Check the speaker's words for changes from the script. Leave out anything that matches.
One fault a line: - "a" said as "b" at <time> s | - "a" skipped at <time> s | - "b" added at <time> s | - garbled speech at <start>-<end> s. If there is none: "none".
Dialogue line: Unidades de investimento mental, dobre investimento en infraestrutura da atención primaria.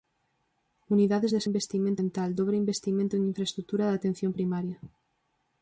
none